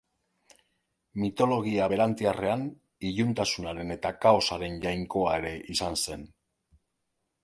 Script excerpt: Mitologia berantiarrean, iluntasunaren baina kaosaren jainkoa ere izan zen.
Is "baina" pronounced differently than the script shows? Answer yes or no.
yes